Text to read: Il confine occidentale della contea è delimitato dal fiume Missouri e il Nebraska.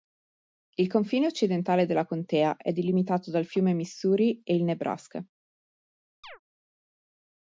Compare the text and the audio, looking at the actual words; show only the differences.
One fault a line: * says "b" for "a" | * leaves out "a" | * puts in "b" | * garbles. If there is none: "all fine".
all fine